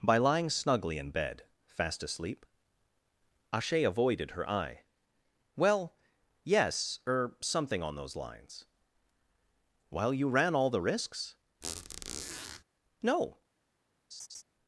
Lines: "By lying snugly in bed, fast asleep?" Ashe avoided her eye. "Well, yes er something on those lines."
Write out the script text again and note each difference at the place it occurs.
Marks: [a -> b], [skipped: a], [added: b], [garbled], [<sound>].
"By lying snugly in bed, fast asleep?" Ashe avoided her eye. "Well, yes er something on those lines." [added: While you ran all the risks No] [squeak] [laugh]